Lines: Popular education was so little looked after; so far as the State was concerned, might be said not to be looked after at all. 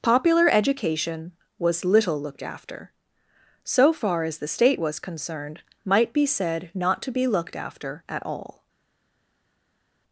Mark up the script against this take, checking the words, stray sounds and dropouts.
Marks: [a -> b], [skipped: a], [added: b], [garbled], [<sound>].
Popular education was [skipped: so] little looked after; so far as the State was concerned, might be said not to be looked after at all.